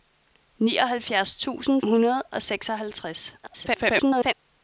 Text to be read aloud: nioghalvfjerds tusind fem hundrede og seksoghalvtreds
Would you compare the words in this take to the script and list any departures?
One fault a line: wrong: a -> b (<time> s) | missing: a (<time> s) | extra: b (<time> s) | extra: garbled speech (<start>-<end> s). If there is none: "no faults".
missing: fem (1.8 s)
extra: garbled speech (3.4-4.3 s)